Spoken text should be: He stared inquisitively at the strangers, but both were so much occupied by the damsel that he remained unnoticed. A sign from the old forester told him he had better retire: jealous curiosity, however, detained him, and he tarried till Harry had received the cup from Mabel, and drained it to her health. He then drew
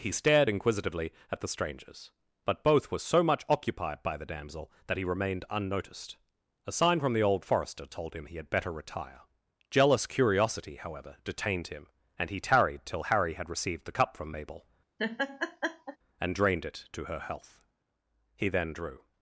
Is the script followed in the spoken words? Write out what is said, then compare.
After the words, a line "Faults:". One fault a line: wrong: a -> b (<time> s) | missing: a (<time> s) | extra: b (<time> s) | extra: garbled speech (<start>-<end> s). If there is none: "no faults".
He stared inquisitively at the strangers, but both were so much occupied by the damsel that he remained unnoticed. A sign from the old forester told him he had better retire: jealous curiosity, however, detained him, and he tarried till Harry had received the cup from Mabel, and drained it to her health. He then drew
Faults:
no faults